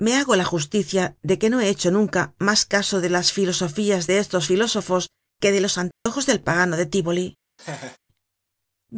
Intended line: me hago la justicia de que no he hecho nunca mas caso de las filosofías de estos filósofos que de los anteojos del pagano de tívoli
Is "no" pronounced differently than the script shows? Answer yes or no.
no